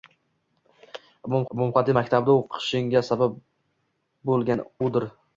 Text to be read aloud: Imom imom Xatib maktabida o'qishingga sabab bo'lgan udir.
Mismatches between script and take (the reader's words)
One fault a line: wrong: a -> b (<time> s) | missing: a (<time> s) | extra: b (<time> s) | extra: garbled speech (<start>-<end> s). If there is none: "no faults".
no faults